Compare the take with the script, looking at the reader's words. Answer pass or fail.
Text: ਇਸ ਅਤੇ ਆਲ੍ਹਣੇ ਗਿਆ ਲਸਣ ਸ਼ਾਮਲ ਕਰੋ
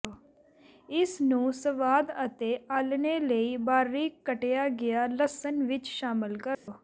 fail